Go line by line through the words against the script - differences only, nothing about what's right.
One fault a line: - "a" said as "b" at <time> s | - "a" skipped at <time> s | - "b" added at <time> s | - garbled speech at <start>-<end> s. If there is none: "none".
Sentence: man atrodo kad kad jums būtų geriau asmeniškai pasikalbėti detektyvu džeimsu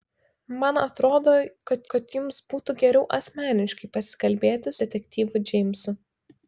none